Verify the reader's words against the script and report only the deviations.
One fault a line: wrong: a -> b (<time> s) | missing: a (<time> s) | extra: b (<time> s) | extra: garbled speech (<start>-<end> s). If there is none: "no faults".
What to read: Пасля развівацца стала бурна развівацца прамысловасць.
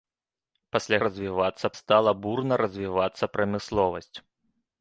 no faults